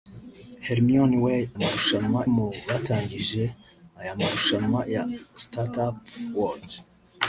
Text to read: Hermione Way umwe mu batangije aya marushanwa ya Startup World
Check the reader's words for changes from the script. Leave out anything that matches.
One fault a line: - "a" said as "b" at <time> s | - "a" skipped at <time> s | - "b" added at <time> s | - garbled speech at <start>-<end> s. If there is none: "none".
- "umwe" said as "marushanwa" at 1.6 s